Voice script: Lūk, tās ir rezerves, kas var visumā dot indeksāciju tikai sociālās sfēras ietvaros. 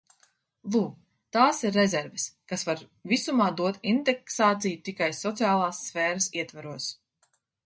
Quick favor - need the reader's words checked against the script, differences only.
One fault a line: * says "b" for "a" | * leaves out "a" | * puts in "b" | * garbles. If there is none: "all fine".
all fine